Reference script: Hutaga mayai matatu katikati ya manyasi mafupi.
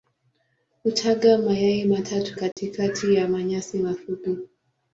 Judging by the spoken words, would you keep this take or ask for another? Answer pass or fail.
pass